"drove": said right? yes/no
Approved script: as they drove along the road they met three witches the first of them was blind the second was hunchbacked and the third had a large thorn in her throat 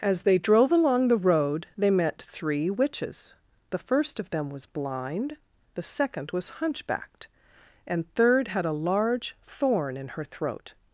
yes